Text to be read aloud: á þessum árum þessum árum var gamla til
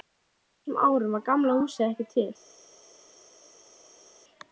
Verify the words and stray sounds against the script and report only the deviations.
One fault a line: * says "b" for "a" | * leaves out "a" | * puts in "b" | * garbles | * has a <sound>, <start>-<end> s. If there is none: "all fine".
* says "var gamla húsið ekki" for "þessum árum var gamla"